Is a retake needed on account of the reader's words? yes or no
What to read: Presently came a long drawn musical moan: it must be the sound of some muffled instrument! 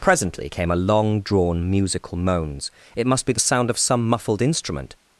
yes